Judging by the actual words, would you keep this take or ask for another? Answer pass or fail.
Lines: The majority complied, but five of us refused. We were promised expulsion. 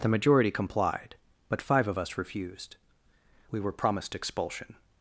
pass